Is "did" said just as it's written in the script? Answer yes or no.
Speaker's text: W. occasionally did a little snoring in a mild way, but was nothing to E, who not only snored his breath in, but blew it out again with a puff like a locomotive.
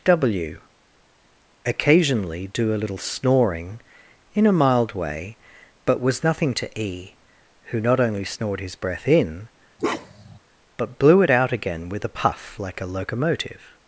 no